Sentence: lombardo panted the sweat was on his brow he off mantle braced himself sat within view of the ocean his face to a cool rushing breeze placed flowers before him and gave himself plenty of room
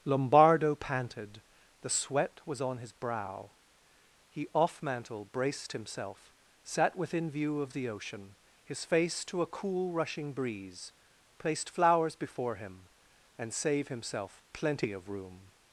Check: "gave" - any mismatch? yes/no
yes